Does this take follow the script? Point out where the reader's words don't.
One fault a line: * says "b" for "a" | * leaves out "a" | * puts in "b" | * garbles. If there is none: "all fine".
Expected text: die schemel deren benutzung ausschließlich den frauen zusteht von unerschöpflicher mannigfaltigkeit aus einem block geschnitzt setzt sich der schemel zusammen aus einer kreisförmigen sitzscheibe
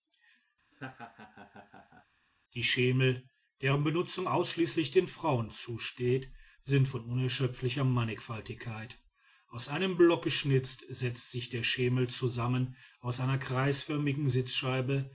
* puts in "sind"